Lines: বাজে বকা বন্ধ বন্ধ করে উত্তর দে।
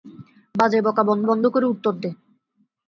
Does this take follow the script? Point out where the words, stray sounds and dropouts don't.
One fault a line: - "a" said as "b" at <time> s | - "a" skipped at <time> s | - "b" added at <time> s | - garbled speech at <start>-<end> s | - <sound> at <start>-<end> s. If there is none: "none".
none